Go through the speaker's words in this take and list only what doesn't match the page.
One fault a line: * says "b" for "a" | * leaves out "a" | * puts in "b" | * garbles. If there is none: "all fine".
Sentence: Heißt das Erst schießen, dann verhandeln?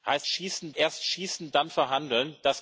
* says "schießen" for "das"